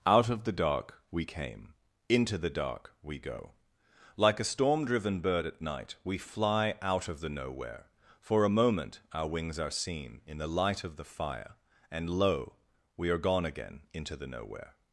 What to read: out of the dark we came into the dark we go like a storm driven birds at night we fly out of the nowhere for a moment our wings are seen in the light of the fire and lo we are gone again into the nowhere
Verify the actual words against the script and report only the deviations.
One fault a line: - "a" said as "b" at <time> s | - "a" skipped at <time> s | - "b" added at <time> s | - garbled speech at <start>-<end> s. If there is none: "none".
- "birds" said as "bird" at 5.2 s